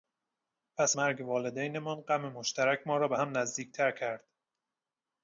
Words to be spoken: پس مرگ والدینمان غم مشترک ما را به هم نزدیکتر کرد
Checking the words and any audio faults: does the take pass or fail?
pass